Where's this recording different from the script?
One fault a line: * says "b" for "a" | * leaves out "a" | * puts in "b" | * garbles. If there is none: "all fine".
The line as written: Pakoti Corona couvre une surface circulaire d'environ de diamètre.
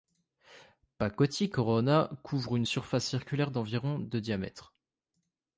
all fine